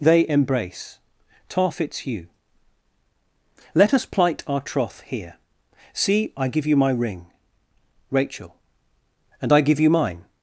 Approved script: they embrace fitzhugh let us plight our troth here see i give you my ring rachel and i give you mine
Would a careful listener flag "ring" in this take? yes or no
no